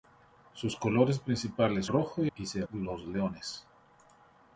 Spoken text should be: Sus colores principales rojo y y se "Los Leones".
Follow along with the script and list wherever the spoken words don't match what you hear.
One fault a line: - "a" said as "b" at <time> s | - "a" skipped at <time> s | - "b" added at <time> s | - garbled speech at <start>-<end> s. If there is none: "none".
none